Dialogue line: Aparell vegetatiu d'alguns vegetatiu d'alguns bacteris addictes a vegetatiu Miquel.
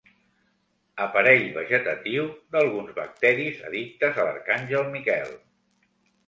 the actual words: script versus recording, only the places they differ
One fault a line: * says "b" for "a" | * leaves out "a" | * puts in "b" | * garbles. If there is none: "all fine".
* leaves out "vegetatiu d'alguns"
* says "l'arcàngel" for "vegetatiu"